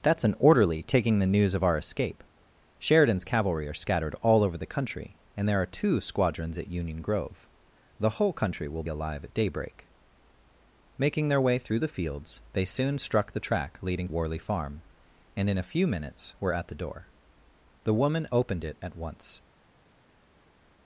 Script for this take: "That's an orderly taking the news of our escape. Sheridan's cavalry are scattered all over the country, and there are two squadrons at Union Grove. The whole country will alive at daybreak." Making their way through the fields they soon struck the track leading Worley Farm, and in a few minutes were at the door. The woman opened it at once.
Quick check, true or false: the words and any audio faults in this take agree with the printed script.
true